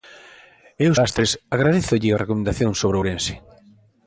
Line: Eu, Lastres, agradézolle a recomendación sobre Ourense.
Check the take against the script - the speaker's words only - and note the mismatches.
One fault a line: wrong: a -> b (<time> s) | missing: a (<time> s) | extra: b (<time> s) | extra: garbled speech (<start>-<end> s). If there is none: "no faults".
no faults